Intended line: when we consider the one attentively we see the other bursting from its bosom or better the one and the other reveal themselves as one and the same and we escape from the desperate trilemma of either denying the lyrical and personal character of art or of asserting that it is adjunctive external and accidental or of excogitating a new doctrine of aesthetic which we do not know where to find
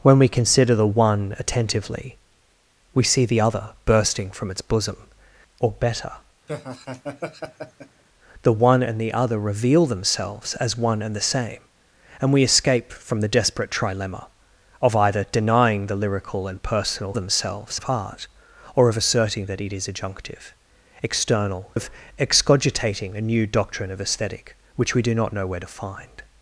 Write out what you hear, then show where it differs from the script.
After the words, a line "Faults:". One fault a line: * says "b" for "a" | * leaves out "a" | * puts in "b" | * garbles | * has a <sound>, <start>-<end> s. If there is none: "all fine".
when we consider the one attentively we see the other bursting from its bosom or better the one and the other reveal themselves as one and the same and we escape from the desperate trilemma of either denying the lyrical and personal themselves of art or of asserting that it is adjunctive external of excogitating a new doctrine of aesthetic which we do not know where to find
Faults:
* has a laugh, 6.5-8.0 s
* says "themselves" for "character"
* leaves out "and accidental or"